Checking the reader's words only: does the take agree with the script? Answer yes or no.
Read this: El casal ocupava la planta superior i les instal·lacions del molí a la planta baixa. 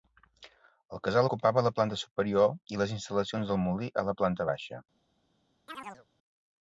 yes